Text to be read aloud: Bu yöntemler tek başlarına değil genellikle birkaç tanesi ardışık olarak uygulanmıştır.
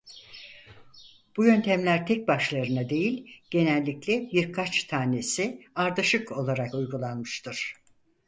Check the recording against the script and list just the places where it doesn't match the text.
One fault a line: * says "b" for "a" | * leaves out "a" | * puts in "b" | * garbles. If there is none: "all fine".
all fine